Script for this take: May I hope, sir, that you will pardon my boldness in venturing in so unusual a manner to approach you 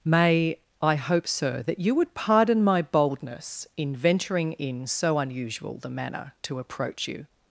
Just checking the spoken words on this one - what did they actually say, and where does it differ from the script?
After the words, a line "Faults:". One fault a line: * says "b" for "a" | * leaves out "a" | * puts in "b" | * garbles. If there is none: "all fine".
May I hope, sir, that you would pardon my boldness in venturing in so unusual the manner to approach you
Faults:
* says "would" for "will"
* says "the" for "a"